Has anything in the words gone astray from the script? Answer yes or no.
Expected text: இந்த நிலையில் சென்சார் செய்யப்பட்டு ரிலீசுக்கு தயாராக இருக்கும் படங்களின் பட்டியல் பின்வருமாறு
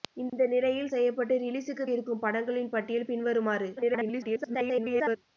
yes